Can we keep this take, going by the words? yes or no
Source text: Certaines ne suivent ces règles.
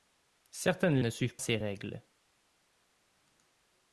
yes